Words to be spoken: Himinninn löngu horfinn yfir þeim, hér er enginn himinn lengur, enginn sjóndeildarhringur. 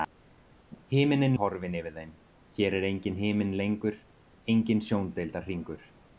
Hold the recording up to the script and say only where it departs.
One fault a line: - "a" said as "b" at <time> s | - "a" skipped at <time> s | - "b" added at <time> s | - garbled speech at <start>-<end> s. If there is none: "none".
- "löngu" skipped at 1.4 s